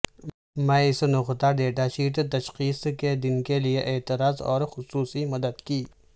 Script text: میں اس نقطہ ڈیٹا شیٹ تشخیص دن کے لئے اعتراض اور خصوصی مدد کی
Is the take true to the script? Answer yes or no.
no